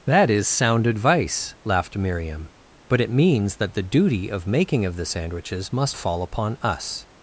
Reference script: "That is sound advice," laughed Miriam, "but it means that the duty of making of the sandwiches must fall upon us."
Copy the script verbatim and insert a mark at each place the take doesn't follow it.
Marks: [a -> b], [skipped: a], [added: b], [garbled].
"That is sound advice," laughed Miriam, "but it means that the duty of making of the sandwiches must fall upon us."